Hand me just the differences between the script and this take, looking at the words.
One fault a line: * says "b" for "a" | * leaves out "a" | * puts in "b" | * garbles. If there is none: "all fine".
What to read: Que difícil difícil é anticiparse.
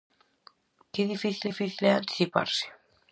all fine